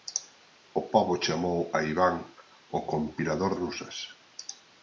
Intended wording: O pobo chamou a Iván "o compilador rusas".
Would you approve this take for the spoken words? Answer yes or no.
yes